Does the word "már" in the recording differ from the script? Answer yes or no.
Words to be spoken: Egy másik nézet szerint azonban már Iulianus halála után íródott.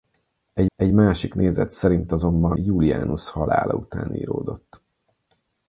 yes